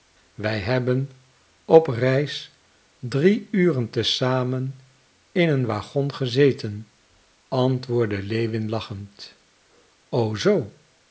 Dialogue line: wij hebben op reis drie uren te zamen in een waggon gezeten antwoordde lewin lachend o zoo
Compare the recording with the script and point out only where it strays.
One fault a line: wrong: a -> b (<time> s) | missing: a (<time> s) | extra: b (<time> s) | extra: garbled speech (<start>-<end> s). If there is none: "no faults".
no faults